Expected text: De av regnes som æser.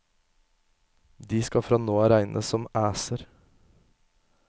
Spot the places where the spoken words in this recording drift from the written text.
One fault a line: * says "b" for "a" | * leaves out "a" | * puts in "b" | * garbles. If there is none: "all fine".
* puts in "skal fra nå"